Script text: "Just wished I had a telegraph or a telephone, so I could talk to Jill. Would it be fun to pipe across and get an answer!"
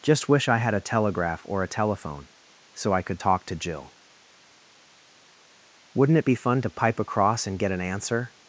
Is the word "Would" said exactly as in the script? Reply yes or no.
no